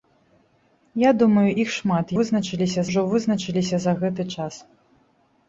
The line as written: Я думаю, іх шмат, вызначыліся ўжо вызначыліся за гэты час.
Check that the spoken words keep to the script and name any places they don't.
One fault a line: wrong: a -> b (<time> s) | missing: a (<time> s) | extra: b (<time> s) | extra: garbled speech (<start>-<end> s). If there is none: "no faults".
no faults